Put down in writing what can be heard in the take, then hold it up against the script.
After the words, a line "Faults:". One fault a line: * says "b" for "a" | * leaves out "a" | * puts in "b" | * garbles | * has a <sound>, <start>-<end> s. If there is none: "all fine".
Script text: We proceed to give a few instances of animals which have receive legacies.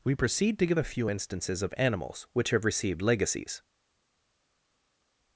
We proceed to give a few instances of animals which have received legacies.
Faults:
* says "received" for "receive"